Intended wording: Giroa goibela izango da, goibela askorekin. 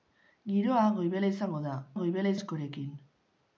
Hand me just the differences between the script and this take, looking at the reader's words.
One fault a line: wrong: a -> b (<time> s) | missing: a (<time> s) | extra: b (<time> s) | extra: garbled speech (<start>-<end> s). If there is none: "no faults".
no faults